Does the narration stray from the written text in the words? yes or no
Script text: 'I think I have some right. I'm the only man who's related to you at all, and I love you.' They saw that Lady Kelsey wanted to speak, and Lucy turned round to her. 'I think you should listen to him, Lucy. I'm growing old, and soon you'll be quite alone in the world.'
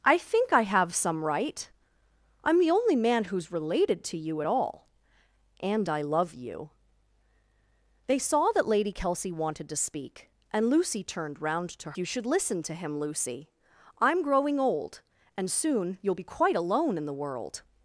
yes